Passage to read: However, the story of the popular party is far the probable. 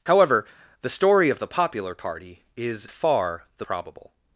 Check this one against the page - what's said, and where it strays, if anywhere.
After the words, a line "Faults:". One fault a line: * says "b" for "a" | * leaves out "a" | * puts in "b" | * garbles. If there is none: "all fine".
However, the story of the popular party is far the probable.
Faults:
all fine